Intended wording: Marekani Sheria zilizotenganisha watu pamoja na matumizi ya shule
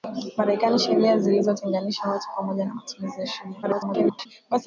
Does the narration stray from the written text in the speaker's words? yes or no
yes